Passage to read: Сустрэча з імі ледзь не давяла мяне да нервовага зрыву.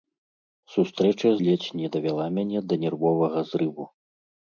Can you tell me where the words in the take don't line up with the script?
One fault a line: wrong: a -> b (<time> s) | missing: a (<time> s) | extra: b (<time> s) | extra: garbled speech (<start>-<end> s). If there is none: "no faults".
missing: з імі (1.3 s)